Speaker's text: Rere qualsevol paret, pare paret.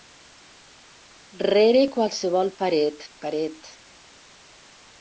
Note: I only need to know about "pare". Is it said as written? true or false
false